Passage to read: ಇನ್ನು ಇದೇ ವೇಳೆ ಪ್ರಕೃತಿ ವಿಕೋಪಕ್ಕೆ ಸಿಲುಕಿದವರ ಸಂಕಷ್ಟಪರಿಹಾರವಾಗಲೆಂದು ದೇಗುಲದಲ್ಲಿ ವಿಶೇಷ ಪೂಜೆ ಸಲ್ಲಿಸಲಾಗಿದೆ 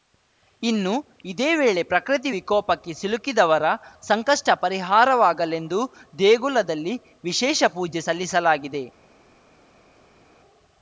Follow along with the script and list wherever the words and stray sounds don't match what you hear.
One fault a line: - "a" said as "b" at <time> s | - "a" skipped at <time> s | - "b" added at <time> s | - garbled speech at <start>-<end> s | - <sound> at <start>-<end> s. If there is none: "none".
none